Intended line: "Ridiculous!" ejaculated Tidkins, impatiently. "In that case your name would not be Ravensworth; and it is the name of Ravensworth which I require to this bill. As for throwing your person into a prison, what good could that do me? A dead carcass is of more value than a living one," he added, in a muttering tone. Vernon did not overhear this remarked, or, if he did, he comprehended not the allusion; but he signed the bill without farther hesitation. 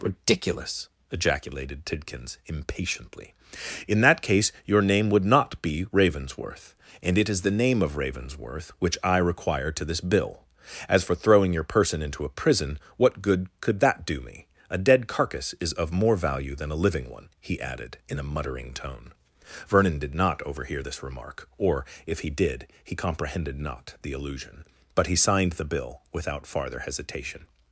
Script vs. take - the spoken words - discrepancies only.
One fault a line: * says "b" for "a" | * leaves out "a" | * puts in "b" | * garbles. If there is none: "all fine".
* says "remark" for "remarked"